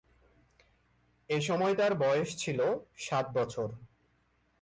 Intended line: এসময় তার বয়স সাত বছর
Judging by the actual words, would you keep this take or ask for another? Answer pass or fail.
fail